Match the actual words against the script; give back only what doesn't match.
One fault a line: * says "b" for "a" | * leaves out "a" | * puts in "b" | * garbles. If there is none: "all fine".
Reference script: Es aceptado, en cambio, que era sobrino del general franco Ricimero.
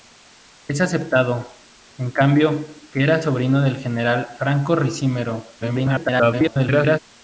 * garbles